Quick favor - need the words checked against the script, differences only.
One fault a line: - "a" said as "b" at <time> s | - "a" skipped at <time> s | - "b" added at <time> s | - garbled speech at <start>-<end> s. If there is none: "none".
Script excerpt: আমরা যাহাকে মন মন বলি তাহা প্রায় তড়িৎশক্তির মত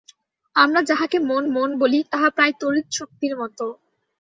none